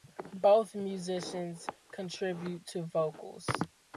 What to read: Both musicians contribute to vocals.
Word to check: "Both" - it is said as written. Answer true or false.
true